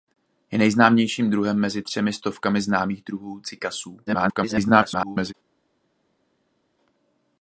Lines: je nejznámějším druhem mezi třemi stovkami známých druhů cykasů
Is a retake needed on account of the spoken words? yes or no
yes